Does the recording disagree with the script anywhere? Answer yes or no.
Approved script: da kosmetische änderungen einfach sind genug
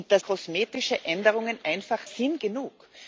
no